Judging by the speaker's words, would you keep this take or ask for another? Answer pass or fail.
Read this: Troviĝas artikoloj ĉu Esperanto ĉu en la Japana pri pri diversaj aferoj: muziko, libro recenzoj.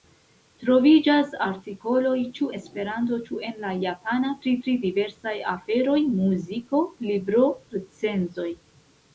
pass